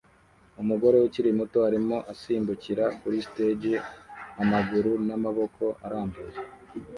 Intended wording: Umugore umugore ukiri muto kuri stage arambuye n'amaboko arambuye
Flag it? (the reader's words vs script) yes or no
yes